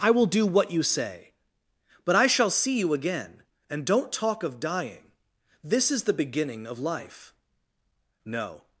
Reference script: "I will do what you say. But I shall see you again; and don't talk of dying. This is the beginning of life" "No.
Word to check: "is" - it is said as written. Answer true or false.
true